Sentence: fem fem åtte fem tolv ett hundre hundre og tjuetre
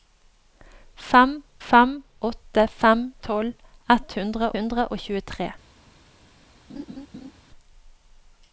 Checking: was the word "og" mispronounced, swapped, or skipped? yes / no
no